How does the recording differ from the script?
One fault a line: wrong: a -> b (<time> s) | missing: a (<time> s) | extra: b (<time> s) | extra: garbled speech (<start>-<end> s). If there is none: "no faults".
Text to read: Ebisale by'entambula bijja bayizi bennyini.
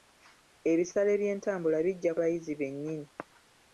no faults